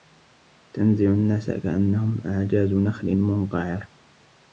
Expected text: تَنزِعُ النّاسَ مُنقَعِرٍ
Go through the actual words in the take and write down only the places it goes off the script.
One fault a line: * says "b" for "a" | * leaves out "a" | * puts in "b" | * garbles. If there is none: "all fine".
* puts in "كَأَنَّهُم أَعجازُ نَخلٍ"